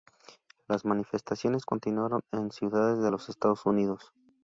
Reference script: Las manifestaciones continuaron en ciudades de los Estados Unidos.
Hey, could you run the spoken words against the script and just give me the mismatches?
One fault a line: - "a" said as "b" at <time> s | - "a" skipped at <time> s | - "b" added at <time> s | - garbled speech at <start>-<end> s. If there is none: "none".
none